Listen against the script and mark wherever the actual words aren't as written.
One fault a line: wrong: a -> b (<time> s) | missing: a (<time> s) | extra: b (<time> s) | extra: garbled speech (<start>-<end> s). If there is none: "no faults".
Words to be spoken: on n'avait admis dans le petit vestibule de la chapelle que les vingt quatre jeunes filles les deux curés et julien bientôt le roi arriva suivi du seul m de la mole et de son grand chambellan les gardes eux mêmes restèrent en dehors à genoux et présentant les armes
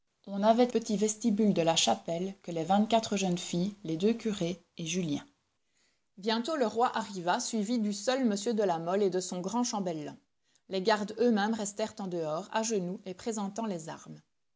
missing: admis dans le (0.7 s)